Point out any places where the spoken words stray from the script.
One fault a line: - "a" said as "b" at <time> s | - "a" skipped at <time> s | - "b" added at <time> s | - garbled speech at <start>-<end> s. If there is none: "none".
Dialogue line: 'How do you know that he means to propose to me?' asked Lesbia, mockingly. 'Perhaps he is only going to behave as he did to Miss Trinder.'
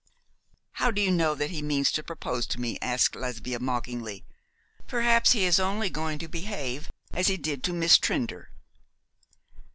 none